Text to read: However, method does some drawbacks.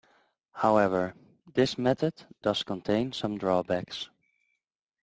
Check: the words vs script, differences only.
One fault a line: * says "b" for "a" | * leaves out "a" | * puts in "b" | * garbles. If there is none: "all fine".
* puts in "this"
* puts in "contain"